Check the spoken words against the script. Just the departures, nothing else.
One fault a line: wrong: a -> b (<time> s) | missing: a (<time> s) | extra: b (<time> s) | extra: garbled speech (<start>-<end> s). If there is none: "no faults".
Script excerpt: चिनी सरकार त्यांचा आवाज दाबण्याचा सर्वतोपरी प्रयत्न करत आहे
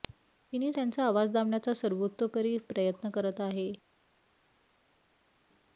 missing: सरकार (0.7 s)